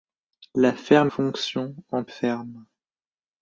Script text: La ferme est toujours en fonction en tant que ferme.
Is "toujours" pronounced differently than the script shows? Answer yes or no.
yes